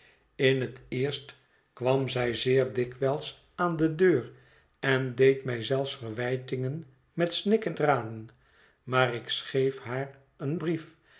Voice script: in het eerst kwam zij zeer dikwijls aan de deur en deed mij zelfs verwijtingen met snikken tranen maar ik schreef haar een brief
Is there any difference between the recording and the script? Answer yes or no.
no